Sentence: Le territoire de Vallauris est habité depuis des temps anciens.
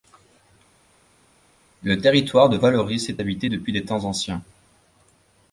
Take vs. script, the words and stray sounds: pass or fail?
pass